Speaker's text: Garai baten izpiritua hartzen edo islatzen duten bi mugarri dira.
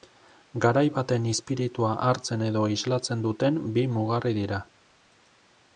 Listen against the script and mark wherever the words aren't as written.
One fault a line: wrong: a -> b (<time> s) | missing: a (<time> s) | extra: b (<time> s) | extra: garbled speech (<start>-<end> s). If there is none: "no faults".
no faults